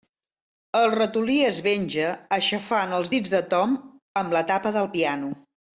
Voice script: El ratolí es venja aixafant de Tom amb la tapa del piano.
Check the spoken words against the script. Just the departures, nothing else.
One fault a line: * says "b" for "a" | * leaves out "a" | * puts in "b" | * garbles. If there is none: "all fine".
* puts in "els dits"